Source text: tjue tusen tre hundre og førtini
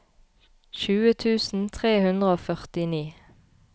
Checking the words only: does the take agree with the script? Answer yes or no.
yes